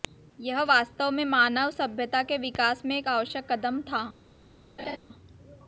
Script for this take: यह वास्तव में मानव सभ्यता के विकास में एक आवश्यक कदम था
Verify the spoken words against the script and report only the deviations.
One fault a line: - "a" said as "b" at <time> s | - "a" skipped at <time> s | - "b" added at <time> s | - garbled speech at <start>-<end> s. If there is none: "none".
none